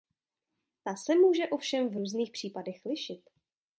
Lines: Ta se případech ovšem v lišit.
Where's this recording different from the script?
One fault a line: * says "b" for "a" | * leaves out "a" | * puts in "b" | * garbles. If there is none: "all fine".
* says "může" for "případech"
* puts in "různých případech"